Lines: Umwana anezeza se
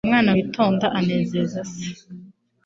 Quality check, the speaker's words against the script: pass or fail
fail